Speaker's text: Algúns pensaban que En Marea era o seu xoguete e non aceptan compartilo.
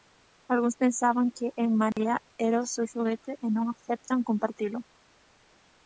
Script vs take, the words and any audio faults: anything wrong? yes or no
yes